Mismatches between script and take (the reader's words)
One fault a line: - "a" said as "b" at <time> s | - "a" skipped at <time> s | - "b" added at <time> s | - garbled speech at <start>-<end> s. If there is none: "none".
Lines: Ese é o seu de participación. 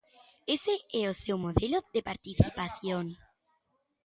- "modelo" added at 1.4 s